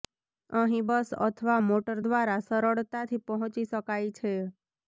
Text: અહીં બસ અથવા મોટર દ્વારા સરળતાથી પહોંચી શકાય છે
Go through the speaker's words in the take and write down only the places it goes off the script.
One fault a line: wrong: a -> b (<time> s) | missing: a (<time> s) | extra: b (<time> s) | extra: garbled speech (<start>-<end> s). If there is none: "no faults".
no faults